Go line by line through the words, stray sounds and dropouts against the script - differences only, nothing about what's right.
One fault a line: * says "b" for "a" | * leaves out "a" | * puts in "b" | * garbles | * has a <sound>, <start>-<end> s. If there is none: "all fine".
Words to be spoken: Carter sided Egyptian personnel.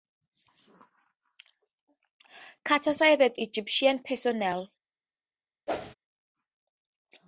* has a whoosh, 5.7-5.9 s